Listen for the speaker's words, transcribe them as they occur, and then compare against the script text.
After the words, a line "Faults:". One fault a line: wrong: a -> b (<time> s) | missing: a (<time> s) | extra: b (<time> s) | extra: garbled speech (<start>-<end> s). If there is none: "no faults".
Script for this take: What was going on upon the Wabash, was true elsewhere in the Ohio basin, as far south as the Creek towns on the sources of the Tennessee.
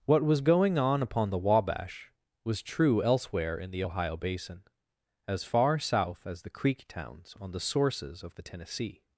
What was going on upon the Wabash, was true elsewhere in the Ohio basin, as far south as the Creek towns on the sources of the Tennessee.
Faults:
no faults